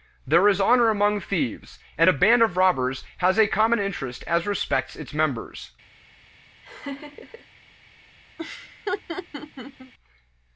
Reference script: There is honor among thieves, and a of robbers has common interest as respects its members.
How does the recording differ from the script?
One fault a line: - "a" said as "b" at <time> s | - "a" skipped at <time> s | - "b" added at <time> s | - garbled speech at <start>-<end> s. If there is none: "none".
- "band" added at 2.1 s
- "a" added at 3.4 s